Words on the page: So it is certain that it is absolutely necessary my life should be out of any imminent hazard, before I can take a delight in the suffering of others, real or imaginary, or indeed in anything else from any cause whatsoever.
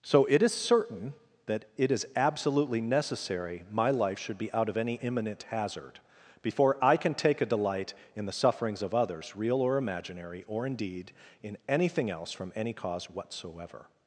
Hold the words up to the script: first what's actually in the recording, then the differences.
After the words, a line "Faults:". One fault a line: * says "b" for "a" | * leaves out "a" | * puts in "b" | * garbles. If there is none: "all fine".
So it is certain that it is absolutely necessary my life should be out of any imminent hazard, before I can take a delight in the sufferings of others, real or imaginary, or indeed in anything else from any cause whatsoever.
Faults:
* says "sufferings" for "suffering"